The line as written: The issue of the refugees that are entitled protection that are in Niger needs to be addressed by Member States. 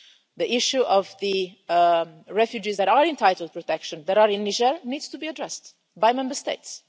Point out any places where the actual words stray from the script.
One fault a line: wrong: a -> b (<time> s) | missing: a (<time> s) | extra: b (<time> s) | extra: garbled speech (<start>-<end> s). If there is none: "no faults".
no faults